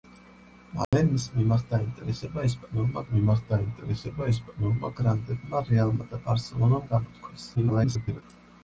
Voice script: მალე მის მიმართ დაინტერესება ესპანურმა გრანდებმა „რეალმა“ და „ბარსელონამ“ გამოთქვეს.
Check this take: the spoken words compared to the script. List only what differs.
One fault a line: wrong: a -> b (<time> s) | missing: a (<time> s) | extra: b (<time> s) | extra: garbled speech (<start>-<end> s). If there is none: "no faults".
extra: მიმართ დაინტერესება ესპანურმა (3.1 s)
extra: garbled speech (7.5-8.2 s)